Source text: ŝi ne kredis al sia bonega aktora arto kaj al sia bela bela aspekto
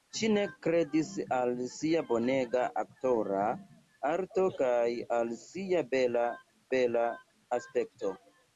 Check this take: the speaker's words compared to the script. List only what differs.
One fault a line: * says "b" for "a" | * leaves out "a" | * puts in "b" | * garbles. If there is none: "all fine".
all fine